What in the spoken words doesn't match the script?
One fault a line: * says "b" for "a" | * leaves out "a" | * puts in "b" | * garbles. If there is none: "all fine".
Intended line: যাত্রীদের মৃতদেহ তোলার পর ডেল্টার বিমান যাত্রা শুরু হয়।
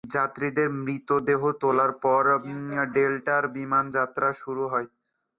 all fine